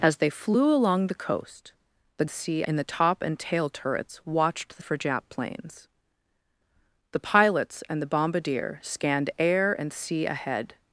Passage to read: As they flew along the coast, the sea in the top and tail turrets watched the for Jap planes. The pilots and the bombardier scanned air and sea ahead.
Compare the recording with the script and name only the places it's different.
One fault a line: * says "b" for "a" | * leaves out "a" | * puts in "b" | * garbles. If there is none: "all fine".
all fine